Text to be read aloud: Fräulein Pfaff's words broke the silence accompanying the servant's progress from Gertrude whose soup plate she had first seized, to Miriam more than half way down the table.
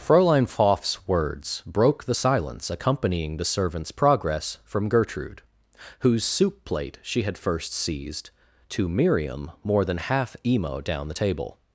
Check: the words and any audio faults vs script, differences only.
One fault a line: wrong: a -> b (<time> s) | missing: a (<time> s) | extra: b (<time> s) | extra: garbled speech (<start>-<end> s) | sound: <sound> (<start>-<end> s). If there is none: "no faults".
wrong: way -> emo (10.4 s)